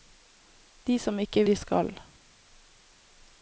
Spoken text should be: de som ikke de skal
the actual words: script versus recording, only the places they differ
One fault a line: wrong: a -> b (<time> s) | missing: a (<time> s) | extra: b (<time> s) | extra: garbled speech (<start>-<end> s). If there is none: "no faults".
no faults